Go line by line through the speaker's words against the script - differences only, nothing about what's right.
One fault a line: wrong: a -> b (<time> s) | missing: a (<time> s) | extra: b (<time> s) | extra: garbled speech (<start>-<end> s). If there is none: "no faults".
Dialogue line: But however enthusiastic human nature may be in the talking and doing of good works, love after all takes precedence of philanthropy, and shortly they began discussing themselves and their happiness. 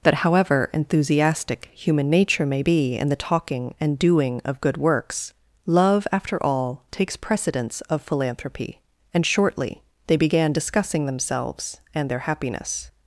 wrong: But -> That (0.0 s)